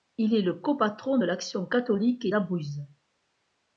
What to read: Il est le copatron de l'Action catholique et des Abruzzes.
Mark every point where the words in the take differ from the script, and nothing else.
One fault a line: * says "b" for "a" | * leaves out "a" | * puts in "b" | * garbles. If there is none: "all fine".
* leaves out "des"